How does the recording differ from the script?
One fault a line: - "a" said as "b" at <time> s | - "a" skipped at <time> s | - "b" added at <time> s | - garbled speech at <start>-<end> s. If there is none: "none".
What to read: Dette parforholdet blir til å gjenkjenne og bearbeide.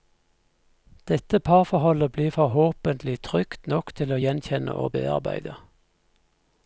- "forhåpentlig trygt nok" added at 2.3 s